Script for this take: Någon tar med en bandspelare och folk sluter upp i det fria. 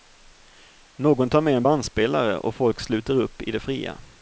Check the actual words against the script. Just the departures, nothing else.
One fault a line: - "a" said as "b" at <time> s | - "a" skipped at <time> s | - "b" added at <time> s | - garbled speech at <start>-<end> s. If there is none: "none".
none